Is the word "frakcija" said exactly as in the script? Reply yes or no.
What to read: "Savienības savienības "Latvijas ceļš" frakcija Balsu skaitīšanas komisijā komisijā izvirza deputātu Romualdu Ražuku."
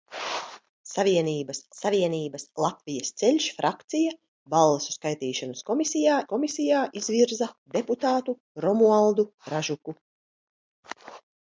yes